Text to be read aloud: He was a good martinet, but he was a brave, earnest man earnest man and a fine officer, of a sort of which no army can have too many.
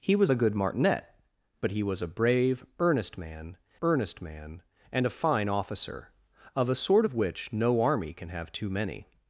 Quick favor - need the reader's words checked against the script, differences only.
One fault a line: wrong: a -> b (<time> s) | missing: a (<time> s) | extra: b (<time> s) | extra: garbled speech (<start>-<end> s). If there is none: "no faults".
no faults